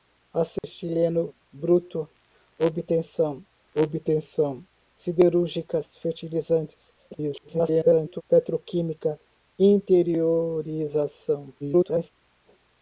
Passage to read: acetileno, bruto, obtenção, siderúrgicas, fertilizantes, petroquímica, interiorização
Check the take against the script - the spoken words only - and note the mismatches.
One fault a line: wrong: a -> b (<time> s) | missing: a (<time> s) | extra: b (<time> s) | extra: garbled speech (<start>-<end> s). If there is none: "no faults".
extra: obtenção (3.7 s)
extra: garbled speech (7.1-8.2 s)
extra: garbled speech (11.6-12.1 s)